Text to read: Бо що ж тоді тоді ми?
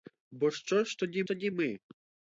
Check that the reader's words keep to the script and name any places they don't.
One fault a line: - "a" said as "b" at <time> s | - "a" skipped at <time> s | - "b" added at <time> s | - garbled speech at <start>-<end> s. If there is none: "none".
none